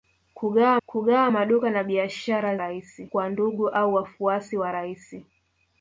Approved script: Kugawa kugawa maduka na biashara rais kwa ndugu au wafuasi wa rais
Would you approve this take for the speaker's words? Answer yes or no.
yes